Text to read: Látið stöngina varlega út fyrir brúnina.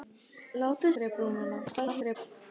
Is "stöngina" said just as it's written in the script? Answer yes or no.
no